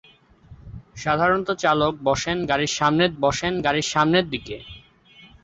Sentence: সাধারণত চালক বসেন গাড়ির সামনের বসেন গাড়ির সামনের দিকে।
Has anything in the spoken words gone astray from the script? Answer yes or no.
no